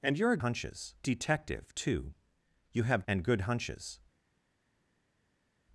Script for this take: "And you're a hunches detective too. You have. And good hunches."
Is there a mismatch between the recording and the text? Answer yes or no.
no